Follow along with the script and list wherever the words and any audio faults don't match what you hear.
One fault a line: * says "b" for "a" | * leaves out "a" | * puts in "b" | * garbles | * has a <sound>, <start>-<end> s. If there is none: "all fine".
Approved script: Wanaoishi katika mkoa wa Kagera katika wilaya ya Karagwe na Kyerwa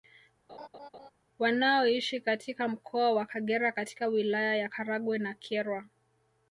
* has a laugh, 0.5-1.1 s